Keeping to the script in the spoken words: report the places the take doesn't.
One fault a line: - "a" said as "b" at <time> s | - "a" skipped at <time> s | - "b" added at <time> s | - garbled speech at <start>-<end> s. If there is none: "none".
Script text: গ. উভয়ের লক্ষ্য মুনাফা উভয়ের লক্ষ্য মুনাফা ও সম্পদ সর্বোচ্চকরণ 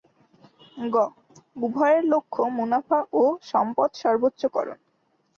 - "উভয়ের লক্ষ্য মুনাফা" skipped at 3.0 s